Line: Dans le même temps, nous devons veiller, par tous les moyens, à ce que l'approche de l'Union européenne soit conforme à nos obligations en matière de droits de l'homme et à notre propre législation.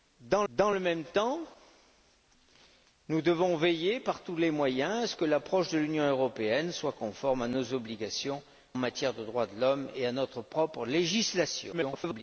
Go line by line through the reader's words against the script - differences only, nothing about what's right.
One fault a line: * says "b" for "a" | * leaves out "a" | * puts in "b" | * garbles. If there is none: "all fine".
* puts in "dans"
* leaves out "en"
* garbles